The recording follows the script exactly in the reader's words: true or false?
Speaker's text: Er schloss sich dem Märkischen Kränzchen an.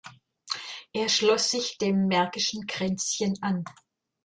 true